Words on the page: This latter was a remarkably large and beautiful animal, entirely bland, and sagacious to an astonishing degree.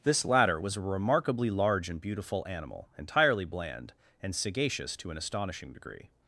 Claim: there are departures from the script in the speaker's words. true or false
false